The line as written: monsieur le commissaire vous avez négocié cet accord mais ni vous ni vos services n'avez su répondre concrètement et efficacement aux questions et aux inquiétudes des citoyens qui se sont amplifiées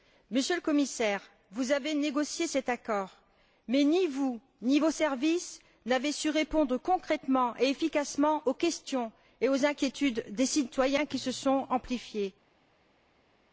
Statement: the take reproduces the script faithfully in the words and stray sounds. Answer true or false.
true